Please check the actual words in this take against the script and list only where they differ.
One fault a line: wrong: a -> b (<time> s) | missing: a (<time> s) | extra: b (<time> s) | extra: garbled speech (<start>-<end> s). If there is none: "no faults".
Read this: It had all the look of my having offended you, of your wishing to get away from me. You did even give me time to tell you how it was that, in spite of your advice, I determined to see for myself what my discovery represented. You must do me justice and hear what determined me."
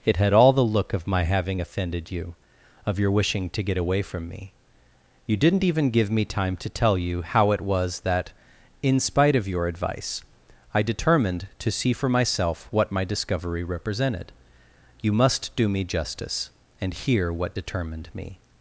wrong: did -> didn't (5.4 s)